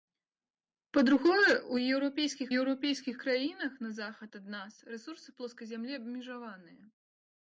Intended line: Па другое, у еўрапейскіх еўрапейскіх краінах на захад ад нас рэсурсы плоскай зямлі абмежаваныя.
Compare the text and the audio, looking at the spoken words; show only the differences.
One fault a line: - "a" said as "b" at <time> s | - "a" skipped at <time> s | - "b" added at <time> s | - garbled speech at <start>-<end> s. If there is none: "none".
none